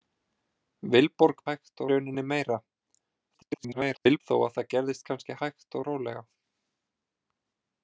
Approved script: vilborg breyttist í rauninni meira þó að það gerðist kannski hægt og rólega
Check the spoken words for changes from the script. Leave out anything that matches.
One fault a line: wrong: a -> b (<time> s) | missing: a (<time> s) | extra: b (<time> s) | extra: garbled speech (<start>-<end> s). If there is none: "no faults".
wrong: breyttist -> hægt (1.5 s)
extra: garbled speech (3.3-4.2 s)